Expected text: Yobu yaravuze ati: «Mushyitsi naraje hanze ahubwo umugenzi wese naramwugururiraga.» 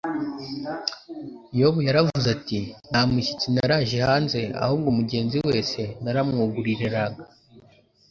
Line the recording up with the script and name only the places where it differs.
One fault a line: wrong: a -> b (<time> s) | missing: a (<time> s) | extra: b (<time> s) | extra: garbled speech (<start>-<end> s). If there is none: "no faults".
extra: Nta (2.9 s)